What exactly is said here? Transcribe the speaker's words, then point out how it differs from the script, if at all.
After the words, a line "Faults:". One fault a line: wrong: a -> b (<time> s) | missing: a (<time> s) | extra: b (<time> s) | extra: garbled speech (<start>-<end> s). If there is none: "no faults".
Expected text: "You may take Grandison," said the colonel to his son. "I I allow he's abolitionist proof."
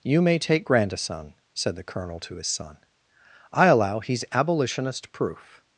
"You may take Grandison," said the colonel to his son. "I allow he's abolitionist proof."
Faults:
missing: I (3.7 s)